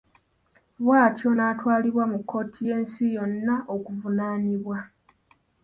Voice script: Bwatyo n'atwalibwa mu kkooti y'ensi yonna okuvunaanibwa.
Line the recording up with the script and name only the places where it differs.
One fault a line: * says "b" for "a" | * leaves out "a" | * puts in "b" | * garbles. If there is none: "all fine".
all fine